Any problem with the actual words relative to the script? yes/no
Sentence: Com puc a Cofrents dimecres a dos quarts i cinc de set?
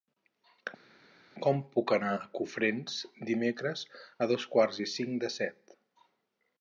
yes